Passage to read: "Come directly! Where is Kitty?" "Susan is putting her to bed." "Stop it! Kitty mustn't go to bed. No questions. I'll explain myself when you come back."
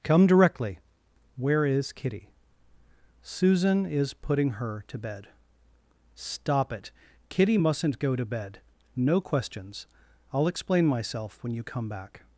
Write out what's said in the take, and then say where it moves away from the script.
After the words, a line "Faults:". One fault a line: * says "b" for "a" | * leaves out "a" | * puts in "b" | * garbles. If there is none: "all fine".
"Come directly! Where is Kitty?" "Susan is putting her to bed." "Stop it! Kitty mustn't go to bed. No questions. I'll explain myself when you come back."
Faults:
all fine